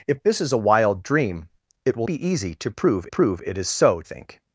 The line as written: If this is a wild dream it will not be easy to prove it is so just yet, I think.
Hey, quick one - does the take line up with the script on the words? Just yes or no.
no